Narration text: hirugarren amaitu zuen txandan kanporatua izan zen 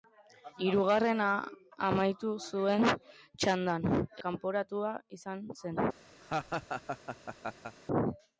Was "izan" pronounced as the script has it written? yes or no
yes